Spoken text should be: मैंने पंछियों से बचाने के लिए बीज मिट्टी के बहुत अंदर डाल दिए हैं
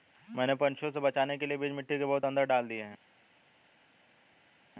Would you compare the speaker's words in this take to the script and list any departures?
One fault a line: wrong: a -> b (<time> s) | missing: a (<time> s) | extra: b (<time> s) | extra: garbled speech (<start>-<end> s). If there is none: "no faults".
no faults